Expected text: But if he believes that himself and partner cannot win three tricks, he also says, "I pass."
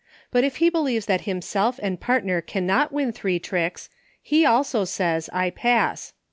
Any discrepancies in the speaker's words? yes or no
no